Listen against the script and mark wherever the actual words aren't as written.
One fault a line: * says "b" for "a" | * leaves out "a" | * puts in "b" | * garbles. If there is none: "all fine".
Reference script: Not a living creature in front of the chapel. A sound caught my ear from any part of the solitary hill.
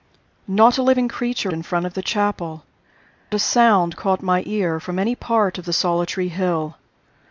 all fine